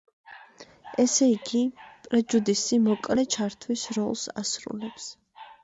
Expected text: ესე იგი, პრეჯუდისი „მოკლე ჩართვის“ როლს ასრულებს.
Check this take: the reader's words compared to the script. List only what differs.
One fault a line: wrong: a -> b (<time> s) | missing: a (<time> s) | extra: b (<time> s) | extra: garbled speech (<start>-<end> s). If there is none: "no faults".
no faults